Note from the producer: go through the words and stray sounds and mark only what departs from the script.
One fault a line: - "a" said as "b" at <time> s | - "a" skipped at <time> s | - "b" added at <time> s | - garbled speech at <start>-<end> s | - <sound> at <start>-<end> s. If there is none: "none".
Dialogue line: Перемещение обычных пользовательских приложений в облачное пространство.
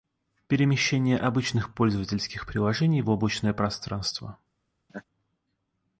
- laugh at 4.9-5.0 s